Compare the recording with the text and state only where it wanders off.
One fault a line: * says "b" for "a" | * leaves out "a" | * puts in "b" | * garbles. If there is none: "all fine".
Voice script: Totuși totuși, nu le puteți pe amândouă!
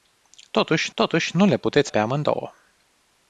all fine